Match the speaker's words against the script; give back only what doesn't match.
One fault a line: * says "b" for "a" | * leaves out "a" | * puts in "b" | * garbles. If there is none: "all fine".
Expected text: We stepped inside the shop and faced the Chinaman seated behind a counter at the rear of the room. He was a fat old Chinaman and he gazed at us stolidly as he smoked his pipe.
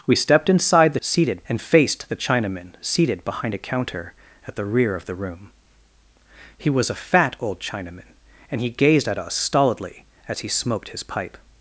* says "seated" for "shop"